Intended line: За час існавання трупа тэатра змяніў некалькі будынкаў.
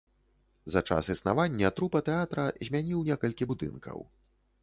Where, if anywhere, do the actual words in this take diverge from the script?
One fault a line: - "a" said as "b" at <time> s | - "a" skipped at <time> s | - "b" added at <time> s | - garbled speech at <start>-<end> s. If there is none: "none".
none